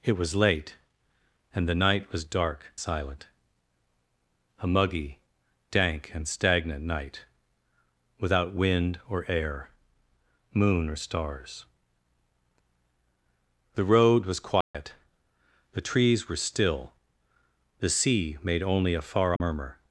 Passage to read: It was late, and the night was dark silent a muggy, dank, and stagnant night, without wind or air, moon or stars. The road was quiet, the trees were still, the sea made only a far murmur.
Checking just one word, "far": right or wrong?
right